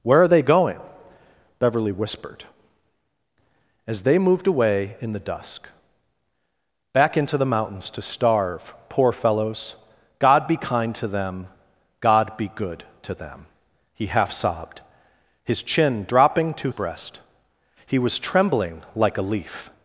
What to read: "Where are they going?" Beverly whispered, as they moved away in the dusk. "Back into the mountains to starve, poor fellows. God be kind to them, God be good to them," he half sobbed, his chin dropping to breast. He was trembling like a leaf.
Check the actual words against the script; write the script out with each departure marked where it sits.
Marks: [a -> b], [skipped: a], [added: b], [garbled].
"Where are they going?" Beverly whispered, as they moved away in the dusk. "Back into the mountains to starve, poor fellows. God be kind to them, God be good to them," he half sobbed, his chin dropping to breast. He was trembling like a leaf.